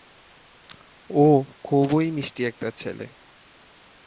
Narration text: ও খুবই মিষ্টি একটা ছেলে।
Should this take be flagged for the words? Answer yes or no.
no